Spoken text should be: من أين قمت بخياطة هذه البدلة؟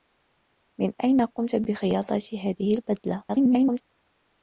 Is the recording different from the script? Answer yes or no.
yes